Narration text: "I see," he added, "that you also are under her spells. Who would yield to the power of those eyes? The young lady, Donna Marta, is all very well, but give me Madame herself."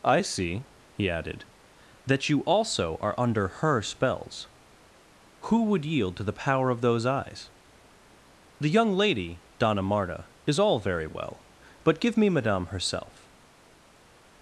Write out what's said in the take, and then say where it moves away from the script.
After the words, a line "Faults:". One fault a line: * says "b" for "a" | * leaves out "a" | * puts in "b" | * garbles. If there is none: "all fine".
"I see," he added, "that you also are under her spells. Who would yield to the power of those eyes? The young lady, Donna Marta, is all very well, but give me Madame herself."
Faults:
all fine